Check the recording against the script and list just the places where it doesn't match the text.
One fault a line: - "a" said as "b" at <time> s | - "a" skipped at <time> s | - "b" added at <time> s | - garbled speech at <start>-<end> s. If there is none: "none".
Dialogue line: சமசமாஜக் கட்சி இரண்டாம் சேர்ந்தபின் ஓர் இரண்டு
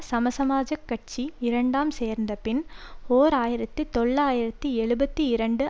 - "ஆயிரத்தி தொள்ளாயிரத்தி எழுபத்தி" added at 3.3 s